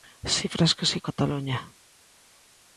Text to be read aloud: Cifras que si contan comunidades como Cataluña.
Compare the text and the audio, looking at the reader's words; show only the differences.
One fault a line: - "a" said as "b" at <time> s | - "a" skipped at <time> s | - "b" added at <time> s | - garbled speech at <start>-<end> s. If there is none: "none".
- "contan comunidades como" skipped at 1.0 s